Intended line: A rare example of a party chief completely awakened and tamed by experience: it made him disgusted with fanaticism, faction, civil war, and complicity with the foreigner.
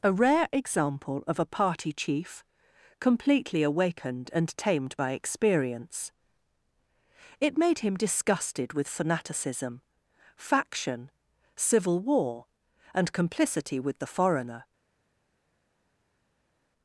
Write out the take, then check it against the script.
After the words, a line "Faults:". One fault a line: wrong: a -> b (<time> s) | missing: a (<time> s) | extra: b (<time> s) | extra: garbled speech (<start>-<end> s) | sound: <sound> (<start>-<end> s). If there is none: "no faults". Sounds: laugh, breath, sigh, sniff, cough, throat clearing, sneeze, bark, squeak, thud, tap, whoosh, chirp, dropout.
A rare example of a party chief completely awakened and tamed by experience: it made him disgusted with fanaticism, faction, civil war, and complicity with the foreigner.
Faults:
no faults